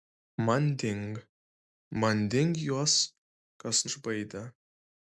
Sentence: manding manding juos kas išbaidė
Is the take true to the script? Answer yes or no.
yes